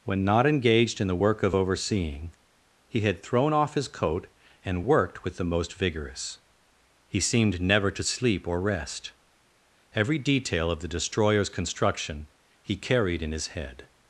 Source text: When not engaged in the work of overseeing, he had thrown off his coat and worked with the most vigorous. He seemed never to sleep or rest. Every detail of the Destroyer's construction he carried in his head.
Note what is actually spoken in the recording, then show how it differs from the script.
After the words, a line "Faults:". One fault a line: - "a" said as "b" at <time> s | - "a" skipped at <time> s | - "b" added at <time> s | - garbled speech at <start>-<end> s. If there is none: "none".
When not engaged in the work of overseeing, he had thrown off his coat and worked with the most vigorous. He seemed never to sleep or rest. Every detail of the Destroyer's construction he carried in his head.
Faults:
none